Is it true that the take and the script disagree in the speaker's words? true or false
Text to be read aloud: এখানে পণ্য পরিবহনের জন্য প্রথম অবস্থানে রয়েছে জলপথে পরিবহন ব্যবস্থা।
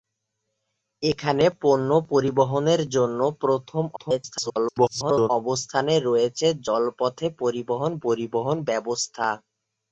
true